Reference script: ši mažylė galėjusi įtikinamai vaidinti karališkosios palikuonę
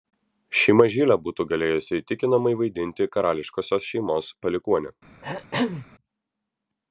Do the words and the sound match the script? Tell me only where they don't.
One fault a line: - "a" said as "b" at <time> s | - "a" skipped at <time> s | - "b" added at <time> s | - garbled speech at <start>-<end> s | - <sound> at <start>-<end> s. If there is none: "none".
- "būtų" added at 1.3 s
- "šeimos" added at 3.9 s
- throat clearing at 5.2-5.9 s